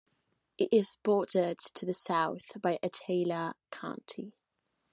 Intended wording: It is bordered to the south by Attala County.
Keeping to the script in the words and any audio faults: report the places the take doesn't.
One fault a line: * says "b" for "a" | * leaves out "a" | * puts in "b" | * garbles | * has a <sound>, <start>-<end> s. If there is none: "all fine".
all fine